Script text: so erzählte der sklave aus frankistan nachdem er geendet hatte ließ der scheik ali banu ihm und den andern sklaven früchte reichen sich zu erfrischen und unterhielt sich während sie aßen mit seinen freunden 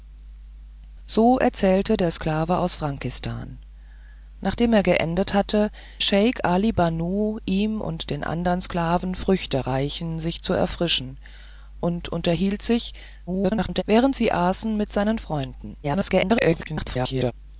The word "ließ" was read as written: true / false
false